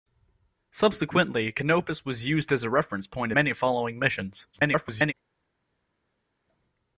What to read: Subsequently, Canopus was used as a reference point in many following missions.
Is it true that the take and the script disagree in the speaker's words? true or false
true